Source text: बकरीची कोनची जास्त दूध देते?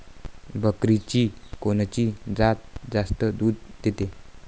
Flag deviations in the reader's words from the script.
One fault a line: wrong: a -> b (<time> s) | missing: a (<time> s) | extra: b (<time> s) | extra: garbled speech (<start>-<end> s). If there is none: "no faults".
extra: जात (2.4 s)